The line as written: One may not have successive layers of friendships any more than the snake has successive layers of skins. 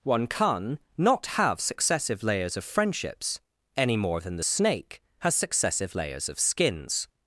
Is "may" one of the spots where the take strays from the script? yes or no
yes